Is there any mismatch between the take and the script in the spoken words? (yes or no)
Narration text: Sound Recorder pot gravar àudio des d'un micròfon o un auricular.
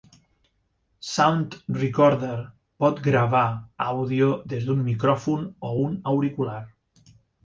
no